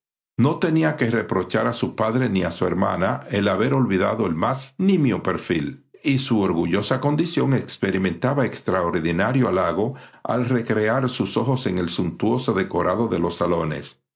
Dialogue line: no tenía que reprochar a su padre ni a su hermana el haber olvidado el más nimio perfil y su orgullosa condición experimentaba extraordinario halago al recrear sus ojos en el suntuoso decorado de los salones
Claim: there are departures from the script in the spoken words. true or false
false